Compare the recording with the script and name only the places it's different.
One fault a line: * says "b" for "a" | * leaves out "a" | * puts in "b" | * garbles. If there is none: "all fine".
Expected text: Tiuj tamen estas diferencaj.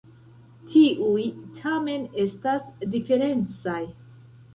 all fine